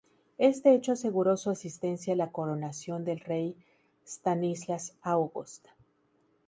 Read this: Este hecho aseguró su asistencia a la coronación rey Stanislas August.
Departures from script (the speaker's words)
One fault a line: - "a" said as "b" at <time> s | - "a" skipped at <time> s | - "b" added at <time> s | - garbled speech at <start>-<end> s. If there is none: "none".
- "del" added at 3.0 s